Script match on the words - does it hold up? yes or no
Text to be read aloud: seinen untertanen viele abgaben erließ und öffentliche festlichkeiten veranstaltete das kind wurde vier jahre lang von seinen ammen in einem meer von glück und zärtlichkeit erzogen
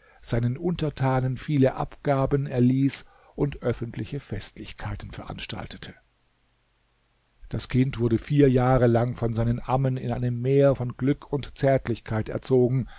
yes